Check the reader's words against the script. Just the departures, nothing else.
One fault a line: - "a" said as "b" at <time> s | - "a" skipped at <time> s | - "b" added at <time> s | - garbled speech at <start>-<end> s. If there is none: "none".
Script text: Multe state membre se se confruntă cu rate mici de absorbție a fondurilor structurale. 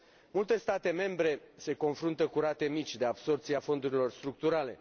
- "se" skipped at 1.7 s